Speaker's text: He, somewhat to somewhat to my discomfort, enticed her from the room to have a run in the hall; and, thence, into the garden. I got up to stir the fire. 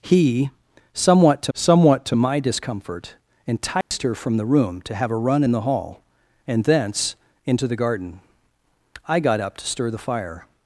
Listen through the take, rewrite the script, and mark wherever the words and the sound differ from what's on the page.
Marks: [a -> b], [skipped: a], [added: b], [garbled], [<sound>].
He, somewhat to somewhat to my discomfort, enticed [dropout] her from the room to have a run in the hall; and, thence, into the garden. I got up to stir the fire.